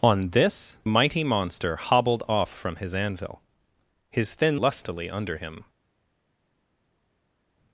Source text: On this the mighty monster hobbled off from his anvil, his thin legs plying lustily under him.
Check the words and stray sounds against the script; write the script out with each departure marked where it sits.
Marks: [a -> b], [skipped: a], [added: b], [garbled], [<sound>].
On this [skipped: the] mighty monster hobbled off from his anvil, his thin [skipped: legs plying] lustily under him.